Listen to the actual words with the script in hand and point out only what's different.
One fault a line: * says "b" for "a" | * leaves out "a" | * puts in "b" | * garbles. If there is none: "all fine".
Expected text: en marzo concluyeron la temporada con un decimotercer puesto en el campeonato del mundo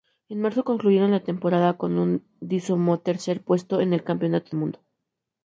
* leaves out "del"